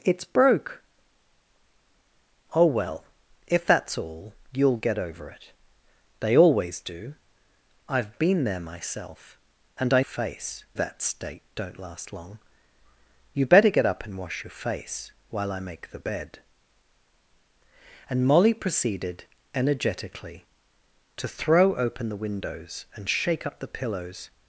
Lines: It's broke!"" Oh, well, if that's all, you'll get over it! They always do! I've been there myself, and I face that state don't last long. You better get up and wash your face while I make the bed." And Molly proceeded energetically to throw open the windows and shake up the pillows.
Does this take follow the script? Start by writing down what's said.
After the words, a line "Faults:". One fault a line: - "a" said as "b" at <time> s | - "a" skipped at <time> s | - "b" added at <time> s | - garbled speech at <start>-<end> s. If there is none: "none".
It's broke!"" Oh, well, if that's all, you'll get over it! They always do! I've been there myself, and I face that state don't last long. You better get up and wash your face while I make the bed." And Molly proceeded energetically to throw open the windows and shake up the pillows.
Faults:
none